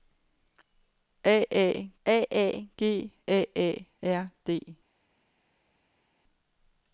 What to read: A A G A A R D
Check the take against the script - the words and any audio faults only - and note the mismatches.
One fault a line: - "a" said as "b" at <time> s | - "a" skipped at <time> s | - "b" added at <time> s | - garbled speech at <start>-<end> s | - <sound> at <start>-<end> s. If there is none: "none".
- "a A" added at 2.0 s